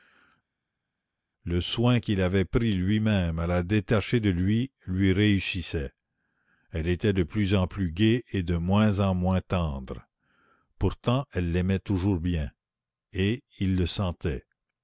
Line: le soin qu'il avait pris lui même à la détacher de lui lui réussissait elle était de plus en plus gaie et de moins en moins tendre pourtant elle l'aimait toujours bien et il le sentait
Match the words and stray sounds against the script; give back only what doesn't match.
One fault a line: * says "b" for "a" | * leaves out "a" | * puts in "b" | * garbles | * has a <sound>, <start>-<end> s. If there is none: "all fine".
all fine